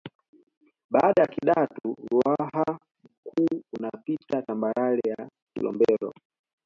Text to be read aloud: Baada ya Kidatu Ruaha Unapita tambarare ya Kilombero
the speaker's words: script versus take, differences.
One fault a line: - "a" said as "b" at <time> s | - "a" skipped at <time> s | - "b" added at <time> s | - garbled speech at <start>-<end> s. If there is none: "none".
- "Mkuu" added at 3.0 s